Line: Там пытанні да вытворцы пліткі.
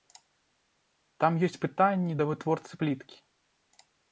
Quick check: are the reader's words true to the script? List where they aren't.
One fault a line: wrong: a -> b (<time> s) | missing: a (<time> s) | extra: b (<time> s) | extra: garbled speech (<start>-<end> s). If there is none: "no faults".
extra: ёсць (1.5 s)